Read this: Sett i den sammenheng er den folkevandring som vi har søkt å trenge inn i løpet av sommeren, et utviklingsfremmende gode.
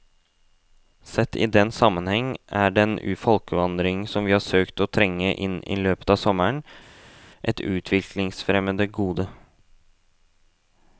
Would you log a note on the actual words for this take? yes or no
no